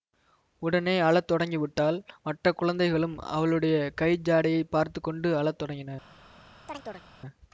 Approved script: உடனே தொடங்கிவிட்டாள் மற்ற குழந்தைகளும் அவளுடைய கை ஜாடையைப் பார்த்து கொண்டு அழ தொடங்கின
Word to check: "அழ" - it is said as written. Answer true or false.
true